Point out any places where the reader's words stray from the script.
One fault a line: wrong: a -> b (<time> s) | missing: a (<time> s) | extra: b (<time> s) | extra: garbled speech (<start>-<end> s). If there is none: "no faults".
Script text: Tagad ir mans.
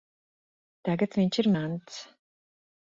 extra: viņš (1.2 s)